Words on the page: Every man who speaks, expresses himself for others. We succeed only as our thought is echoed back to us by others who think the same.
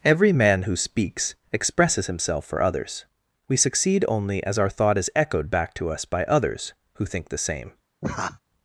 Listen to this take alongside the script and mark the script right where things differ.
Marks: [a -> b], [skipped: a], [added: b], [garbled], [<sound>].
Every man who speaks, expresses himself for others. We succeed only as our thought is echoed back to us by others who think the same. [laugh]